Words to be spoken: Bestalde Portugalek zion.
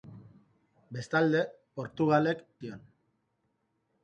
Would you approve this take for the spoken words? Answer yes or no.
yes